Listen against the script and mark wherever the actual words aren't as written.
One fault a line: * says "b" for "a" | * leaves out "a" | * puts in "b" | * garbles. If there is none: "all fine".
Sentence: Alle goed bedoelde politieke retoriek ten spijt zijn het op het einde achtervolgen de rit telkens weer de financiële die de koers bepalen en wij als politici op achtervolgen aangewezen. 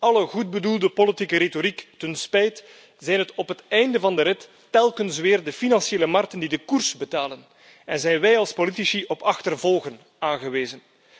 * says "van" for "achtervolgen"
* puts in "markten"
* puts in "zijn"